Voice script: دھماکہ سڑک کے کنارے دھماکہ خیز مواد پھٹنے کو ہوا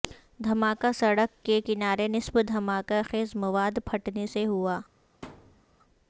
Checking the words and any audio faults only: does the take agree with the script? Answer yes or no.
no